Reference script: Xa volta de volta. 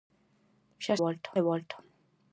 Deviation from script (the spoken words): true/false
false